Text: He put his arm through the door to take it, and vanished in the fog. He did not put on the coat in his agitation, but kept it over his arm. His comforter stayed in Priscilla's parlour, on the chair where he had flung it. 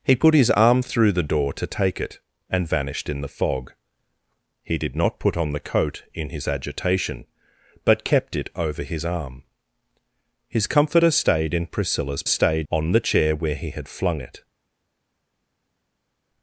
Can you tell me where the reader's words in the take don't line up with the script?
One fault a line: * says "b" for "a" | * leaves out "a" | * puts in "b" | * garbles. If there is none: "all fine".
* says "stayed" for "parlour"